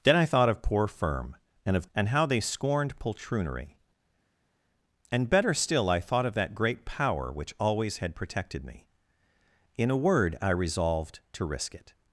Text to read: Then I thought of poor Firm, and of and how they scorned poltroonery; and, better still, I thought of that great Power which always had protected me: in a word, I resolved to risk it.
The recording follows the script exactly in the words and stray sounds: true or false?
true